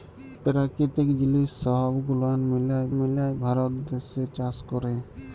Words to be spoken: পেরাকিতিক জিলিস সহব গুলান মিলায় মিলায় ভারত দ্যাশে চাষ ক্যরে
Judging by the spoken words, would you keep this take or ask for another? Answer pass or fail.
pass